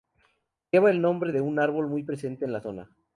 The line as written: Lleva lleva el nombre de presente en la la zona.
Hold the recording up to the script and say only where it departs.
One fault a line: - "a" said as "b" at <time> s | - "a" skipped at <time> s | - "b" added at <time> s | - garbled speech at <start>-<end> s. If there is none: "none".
- "lleva" skipped at 0.9 s
- "un árbol muy" added at 1.4 s
- "la" skipped at 2.6 s